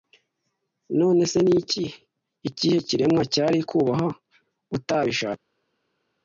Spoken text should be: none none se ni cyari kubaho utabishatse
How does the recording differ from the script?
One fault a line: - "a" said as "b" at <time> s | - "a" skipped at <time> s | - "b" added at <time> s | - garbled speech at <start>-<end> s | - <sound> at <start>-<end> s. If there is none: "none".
- "none" skipped at 1.2 s
- "ikihe kiremwa" added at 2.5 s